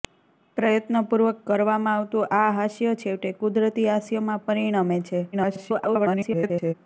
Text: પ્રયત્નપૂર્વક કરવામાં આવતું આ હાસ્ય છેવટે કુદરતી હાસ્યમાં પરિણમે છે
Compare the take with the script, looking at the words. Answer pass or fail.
fail